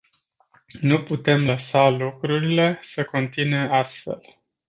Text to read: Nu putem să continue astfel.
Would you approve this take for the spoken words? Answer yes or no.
no